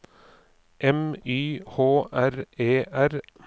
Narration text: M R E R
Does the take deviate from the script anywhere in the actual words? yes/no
yes